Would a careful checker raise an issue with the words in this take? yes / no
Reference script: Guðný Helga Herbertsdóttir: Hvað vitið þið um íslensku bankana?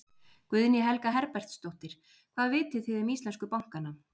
no